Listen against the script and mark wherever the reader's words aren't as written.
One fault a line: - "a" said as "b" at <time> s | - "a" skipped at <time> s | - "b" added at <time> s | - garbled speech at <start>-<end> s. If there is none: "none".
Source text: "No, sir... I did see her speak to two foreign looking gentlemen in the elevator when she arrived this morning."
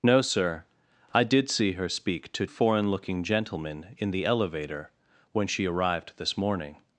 - "two" skipped at 2.5 s